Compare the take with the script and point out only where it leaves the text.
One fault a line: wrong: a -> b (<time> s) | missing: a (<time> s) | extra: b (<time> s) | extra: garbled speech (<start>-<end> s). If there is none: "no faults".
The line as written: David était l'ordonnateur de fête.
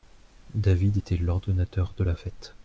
extra: la (2.0 s)